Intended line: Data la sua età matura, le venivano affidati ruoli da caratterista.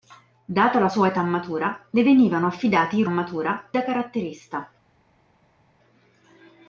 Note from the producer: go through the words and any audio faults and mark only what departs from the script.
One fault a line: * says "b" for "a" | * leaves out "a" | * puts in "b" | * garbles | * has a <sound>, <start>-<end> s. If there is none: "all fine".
* says "matura" for "ruoli"